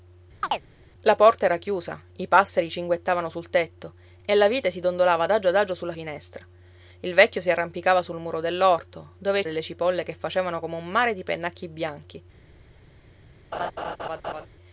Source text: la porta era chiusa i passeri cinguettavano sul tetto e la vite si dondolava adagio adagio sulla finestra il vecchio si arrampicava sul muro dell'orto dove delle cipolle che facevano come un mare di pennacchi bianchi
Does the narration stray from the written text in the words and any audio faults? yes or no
yes